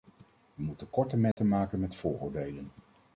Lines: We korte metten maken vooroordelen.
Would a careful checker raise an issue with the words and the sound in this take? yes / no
yes